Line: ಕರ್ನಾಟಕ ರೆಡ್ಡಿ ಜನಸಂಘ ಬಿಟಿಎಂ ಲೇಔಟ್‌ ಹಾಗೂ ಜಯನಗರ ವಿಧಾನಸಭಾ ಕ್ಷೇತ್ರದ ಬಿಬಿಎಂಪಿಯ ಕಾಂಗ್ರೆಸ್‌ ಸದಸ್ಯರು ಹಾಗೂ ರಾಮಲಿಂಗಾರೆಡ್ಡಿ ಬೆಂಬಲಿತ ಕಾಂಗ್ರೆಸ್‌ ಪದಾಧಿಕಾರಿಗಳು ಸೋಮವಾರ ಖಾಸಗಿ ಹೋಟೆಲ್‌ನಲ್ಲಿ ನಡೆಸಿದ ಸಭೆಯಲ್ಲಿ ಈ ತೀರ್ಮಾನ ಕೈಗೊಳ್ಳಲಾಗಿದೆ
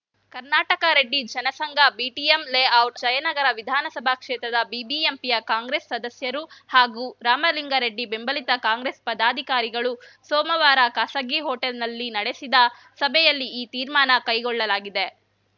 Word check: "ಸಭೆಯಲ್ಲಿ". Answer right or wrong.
right